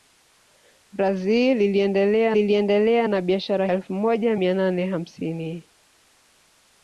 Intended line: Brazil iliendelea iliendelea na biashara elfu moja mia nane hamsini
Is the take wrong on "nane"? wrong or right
right